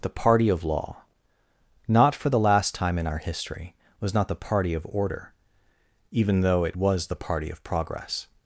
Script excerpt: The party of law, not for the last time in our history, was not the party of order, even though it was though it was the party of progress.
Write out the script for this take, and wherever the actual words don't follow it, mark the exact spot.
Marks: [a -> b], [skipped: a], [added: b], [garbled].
The party of law, not for the last time in our history, was not the party of order, even though it was [skipped: though it was] the party of progress.